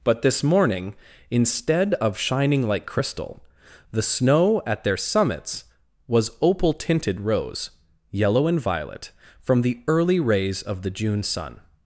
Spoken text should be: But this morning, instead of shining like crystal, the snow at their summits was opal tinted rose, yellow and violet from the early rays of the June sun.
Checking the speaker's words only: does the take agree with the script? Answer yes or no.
yes